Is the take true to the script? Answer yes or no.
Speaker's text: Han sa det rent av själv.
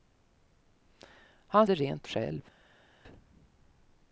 no